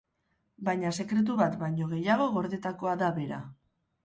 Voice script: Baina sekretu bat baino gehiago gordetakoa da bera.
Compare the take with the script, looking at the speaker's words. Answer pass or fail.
pass